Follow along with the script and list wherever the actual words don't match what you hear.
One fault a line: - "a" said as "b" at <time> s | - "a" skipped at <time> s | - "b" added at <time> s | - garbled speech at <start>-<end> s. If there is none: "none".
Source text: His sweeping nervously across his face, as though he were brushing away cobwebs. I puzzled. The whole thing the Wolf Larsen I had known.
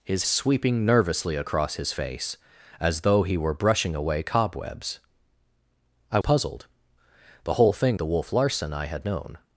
none